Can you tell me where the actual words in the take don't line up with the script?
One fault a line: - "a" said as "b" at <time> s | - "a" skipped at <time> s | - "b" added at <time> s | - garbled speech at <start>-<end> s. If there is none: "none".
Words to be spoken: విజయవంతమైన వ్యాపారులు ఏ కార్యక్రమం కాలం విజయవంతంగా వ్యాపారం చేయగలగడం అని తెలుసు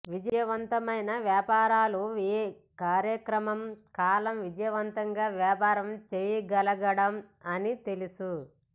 none